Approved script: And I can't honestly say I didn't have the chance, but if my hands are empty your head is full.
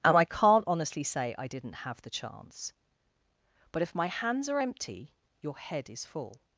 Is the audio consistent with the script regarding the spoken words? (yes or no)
yes